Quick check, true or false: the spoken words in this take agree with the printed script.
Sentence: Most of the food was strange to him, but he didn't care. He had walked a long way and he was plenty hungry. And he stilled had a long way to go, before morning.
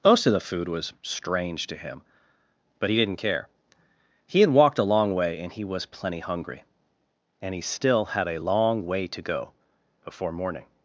false